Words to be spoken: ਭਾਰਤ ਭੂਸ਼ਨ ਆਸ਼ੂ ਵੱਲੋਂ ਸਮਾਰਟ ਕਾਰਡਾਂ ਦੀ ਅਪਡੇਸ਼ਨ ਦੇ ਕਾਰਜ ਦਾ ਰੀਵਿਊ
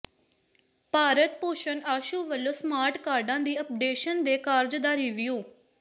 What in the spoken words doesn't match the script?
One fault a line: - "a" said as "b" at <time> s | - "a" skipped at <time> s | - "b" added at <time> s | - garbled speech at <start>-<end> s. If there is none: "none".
none